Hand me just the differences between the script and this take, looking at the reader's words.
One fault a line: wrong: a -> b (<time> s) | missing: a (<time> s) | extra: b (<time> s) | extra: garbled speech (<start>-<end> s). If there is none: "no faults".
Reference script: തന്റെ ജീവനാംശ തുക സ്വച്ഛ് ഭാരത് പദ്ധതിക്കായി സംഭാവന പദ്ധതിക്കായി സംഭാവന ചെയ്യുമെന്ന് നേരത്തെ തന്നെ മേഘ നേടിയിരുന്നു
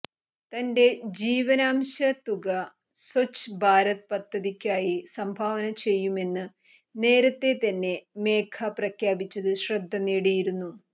missing: പദ്ധതിക്കായി സംഭാവന (5.7 s)
extra: പ്രഖ്യാപിച്ചത് ശ്രദ്ധ (8.8 s)